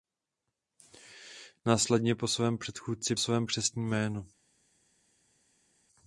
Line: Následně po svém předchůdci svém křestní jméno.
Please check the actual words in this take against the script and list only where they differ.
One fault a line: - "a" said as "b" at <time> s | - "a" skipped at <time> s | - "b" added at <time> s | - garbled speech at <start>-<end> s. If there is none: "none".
none